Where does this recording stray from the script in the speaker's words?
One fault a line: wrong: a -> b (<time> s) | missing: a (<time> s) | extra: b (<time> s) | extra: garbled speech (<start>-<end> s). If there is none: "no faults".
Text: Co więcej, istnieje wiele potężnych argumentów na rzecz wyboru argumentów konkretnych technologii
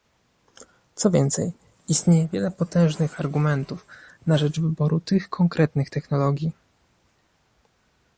wrong: argumentów -> tych (5.0 s)